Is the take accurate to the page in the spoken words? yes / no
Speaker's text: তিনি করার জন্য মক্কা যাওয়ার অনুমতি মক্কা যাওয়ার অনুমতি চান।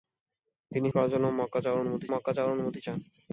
yes